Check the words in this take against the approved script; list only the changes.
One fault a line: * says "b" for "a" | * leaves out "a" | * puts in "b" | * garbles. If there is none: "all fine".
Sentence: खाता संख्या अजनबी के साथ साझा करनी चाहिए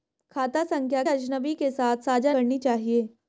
all fine